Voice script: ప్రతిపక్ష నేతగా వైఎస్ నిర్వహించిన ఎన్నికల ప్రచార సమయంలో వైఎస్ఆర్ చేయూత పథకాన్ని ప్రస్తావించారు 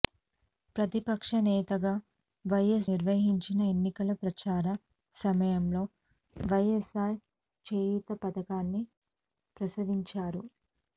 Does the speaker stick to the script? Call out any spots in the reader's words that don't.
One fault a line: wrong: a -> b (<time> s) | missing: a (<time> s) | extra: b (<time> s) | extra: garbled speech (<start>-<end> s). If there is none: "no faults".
no faults